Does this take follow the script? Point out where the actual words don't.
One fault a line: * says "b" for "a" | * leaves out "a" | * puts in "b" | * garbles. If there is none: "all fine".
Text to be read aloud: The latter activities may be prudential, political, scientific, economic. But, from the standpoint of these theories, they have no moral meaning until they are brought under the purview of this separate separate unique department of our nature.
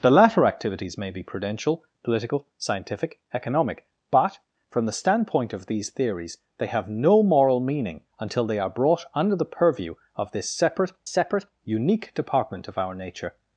all fine